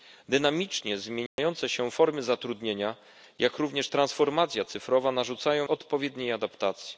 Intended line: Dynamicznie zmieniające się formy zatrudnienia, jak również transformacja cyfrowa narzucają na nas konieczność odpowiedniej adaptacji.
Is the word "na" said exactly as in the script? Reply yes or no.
no